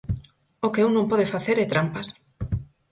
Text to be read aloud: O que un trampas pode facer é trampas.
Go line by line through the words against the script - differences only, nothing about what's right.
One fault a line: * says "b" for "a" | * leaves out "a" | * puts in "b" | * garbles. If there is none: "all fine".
* says "non" for "trampas"